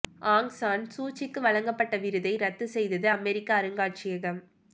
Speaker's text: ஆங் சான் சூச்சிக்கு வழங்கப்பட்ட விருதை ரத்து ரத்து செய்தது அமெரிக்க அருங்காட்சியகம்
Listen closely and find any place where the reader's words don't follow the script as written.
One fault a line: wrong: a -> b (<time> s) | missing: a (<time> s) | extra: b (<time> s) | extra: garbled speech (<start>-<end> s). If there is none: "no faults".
missing: ரத்து (2.7 s)